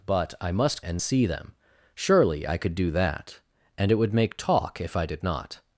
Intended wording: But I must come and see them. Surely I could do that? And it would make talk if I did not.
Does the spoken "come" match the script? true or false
false